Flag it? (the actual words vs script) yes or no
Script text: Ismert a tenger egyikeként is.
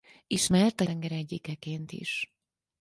no